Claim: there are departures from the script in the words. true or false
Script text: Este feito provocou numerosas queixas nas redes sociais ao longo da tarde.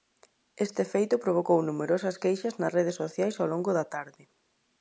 false